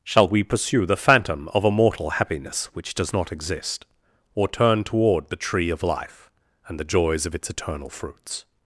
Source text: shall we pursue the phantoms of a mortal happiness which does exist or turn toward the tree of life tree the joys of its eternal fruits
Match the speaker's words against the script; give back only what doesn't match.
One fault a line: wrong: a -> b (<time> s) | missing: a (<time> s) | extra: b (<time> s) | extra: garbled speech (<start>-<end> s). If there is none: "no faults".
wrong: phantoms -> phantom (1.0 s)
extra: not (3.1 s)
wrong: tree -> and (6.7 s)